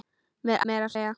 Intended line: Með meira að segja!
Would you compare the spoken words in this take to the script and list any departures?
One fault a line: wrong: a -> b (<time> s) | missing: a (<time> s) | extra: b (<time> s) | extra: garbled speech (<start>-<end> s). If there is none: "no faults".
no faults